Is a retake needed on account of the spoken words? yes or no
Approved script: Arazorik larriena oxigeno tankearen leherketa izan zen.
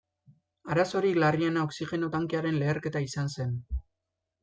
no